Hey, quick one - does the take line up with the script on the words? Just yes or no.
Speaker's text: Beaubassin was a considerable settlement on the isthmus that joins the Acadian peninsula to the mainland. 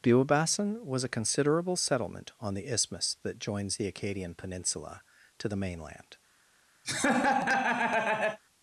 yes